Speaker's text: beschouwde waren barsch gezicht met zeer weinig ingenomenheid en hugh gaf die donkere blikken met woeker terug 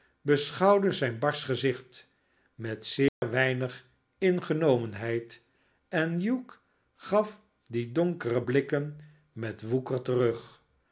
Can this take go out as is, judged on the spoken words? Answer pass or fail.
fail